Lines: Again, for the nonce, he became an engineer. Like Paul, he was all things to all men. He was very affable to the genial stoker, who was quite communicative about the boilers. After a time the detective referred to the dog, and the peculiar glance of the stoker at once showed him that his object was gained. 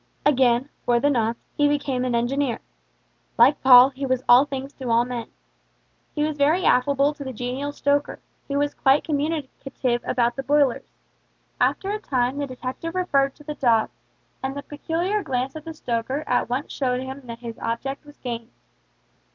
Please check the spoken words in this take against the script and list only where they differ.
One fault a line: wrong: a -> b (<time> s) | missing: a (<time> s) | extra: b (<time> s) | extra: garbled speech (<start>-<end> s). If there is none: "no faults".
no faults